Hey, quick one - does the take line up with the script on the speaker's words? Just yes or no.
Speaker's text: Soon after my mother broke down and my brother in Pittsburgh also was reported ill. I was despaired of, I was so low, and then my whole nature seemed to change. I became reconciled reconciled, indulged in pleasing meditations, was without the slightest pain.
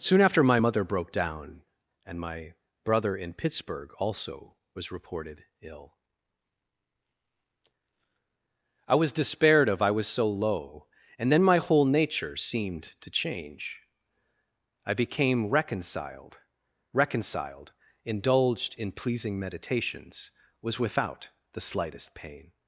yes